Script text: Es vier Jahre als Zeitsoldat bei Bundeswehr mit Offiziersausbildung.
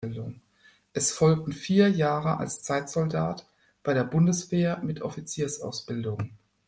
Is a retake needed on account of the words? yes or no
yes